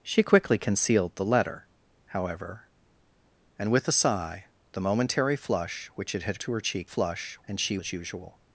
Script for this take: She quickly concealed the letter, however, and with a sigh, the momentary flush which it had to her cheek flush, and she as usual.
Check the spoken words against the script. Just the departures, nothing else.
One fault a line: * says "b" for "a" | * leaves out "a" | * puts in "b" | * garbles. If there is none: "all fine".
all fine